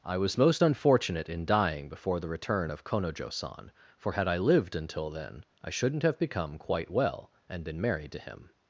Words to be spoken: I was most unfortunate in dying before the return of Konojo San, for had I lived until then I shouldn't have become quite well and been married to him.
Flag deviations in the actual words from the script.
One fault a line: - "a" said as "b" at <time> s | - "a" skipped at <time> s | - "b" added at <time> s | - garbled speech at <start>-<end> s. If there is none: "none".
none